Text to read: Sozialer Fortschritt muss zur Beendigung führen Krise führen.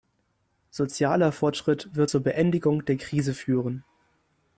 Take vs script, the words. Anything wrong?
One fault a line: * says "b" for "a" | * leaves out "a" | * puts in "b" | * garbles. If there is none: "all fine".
* says "wird" for "muss"
* says "der" for "führen"